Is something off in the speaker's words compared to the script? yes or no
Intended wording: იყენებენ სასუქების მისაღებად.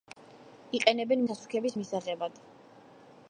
no